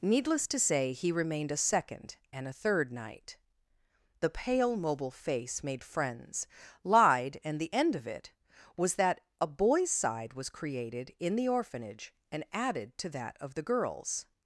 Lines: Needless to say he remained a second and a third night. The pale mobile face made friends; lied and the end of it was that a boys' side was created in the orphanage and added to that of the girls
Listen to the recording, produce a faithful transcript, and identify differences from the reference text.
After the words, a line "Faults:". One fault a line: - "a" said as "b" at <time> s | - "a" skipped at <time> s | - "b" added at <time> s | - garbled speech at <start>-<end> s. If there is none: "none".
Needless to say he remained a second and a third night. The pale mobile face made friends; lied and the end of it was that a boys' side was created in the orphanage and added to that of the girls
Faults:
none